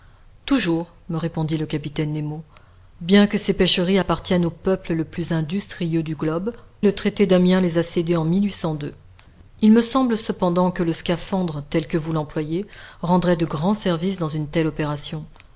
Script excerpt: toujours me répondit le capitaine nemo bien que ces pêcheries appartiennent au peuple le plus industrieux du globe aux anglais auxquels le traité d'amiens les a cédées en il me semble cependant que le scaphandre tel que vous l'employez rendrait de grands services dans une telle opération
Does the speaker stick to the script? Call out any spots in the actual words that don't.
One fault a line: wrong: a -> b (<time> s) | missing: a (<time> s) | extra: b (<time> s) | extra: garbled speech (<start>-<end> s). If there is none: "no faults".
missing: aux anglais auxquels (6.5 s)